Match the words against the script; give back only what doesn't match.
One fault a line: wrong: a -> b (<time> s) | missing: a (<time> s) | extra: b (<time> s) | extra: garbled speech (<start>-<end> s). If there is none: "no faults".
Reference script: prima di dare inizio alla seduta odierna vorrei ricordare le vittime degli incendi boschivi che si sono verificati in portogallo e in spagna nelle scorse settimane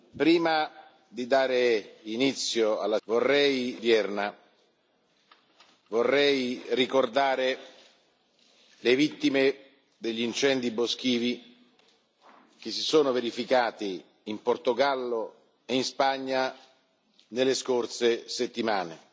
wrong: seduta -> vorrei (3.0 s)